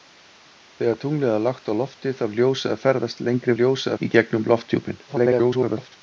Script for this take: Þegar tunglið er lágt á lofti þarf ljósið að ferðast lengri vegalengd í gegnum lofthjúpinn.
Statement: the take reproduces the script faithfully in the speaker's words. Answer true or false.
false